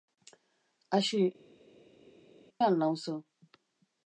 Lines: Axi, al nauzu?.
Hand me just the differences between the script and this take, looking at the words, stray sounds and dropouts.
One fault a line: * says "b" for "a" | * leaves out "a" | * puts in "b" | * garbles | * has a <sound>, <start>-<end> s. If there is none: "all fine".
all fine